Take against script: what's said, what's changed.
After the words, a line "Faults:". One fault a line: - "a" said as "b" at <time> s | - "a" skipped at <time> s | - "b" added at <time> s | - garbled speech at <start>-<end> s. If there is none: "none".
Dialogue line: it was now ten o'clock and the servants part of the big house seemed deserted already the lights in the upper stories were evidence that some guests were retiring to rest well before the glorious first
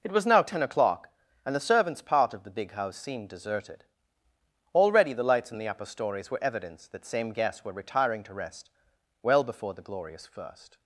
it was now ten o'clock and the servants part of the big house seemed deserted already the lights in the upper stories were evidence that same guests were retiring to rest well before the glorious first
Faults:
- "some" said as "same" at 7.0 s